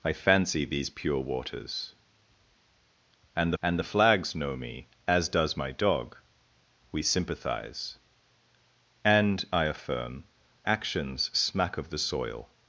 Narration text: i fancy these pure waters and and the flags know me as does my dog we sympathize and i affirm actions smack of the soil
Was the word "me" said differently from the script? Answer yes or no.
no